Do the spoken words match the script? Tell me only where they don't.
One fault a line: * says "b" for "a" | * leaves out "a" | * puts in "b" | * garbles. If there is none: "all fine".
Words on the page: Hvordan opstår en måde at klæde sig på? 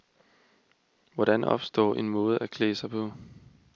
all fine